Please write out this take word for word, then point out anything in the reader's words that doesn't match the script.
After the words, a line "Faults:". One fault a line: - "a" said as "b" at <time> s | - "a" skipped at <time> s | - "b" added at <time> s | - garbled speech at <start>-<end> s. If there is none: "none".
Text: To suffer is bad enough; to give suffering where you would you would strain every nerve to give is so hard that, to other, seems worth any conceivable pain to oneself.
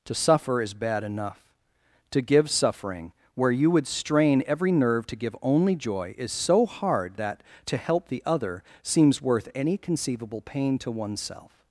To suffer is bad enough; to give suffering where you would strain every nerve to give only joy is so hard that, to help the other, seems worth any conceivable pain to oneself.
Faults:
- "you would" skipped at 3.9 s
- "only joy" added at 5.4 s
- "help the" added at 7.8 s